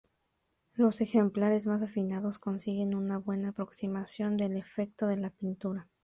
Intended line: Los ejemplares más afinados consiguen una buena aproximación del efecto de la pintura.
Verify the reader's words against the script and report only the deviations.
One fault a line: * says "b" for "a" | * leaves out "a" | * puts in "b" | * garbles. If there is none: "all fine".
all fine